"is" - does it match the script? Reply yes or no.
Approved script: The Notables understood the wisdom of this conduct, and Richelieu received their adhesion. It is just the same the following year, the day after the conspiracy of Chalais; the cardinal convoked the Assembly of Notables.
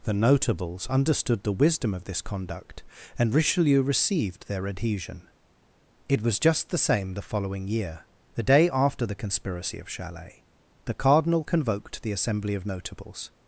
no